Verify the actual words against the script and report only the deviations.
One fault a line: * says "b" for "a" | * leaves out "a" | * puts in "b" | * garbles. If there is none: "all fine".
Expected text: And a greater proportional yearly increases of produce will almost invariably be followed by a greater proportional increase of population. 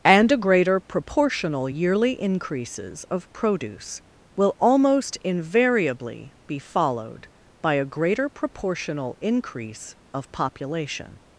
all fine